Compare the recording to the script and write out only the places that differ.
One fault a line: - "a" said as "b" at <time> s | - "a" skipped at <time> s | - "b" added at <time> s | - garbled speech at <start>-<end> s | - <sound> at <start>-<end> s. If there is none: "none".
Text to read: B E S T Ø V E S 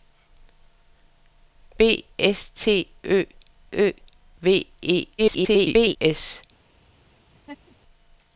- "E" skipped at 2.0 s
- "Ø" added at 3.7 s
- garbled speech at 5.2-6.0 s
- laugh at 7.3-7.8 s